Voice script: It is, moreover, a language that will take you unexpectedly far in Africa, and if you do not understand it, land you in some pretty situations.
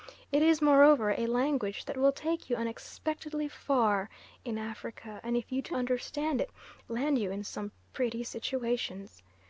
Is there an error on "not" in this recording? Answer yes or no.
yes